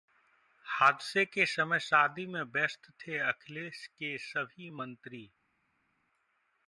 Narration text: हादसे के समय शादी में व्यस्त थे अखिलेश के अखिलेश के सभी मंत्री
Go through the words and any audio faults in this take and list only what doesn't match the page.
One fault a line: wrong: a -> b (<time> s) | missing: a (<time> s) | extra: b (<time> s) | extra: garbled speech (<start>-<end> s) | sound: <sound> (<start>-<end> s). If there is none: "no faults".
missing: अखिलेश के (4.2 s)